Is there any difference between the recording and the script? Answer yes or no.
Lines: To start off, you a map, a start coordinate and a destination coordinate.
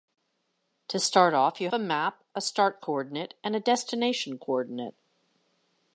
no